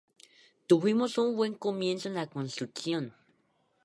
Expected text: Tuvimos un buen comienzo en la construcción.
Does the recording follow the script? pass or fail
pass